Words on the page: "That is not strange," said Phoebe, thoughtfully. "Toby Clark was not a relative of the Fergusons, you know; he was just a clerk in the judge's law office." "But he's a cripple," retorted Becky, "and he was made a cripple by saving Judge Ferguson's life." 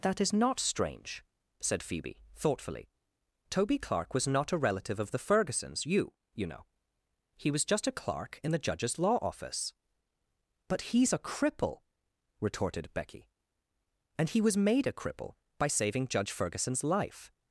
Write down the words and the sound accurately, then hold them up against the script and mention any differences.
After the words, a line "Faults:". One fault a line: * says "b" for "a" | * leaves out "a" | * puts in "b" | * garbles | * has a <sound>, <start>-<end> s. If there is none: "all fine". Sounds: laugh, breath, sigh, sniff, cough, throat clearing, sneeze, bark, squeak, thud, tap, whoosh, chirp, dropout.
"That is not strange," said Phoebe, thoughtfully. "Toby Clark was not a relative of the Fergusons, you you know; he was just a clerk in the judge's law office." "But he's a cripple," retorted Becky, "and he was made a cripple by saving Judge Ferguson's life."
Faults:
* puts in "you"